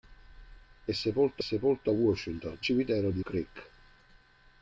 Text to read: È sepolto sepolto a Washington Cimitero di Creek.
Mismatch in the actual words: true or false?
false